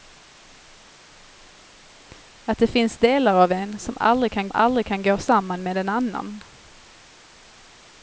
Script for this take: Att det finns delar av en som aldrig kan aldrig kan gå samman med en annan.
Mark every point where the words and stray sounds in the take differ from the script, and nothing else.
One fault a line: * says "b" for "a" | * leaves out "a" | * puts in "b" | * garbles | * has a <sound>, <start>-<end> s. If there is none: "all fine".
all fine